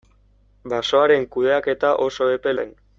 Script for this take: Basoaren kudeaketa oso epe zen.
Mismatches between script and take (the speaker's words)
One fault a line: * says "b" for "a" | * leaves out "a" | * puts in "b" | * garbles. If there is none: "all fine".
all fine